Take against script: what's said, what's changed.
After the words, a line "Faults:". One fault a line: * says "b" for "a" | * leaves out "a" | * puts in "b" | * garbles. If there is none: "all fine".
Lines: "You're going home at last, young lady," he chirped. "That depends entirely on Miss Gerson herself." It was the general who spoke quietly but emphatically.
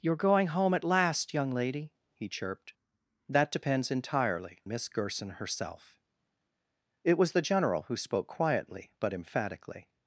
"You're going home at last, young lady," he chirped. "That depends entirely Miss Gerson herself." It was the general who spoke quietly but emphatically.
Faults:
* leaves out "on"